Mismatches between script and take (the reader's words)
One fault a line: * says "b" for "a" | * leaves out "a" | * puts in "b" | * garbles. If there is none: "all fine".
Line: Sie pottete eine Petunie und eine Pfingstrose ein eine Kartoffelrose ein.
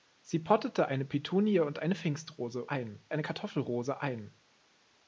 all fine